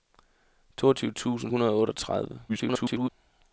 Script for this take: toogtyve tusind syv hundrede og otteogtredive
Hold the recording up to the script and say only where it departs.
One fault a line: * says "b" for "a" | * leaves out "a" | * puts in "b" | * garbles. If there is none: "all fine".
* leaves out "syv"
* garbles